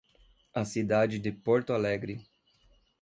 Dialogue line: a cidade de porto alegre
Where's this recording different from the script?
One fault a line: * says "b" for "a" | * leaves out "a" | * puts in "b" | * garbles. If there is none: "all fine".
all fine